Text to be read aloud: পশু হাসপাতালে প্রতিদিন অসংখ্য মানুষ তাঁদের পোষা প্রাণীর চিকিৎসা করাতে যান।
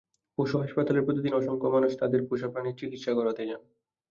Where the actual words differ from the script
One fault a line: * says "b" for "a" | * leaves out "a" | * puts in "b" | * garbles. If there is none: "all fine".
all fine